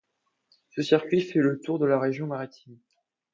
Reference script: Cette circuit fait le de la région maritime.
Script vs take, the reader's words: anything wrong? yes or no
yes